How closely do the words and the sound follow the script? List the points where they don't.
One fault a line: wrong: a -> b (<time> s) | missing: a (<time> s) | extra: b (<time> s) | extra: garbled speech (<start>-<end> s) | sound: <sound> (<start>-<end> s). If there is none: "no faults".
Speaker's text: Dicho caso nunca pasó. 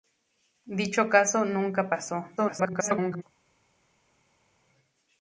extra: garbled speech (2.4-3.2 s)